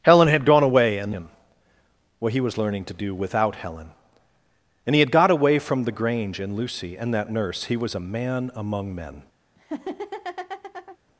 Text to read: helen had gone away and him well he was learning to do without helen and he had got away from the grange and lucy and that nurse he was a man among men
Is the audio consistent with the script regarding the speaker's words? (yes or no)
yes